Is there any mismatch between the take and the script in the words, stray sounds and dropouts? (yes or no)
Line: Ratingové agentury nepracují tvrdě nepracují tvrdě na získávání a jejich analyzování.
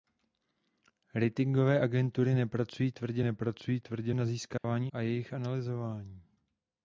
yes